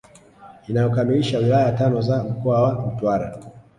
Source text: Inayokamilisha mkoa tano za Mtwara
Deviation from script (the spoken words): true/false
true